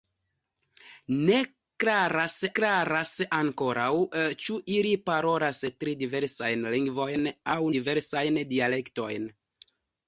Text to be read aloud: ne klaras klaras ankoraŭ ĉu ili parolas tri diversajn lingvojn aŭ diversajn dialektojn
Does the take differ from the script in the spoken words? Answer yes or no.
no